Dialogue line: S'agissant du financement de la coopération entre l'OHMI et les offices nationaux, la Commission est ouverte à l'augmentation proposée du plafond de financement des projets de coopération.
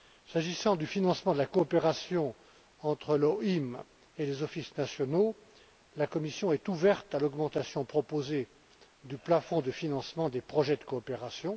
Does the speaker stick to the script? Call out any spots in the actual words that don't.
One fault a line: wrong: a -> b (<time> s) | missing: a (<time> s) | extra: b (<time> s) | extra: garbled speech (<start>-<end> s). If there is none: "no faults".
no faults